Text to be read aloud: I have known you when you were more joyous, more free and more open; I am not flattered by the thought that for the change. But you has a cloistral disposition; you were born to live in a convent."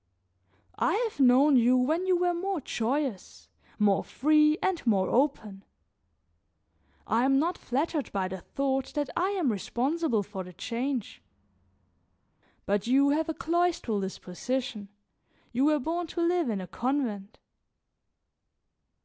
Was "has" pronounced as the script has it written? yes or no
no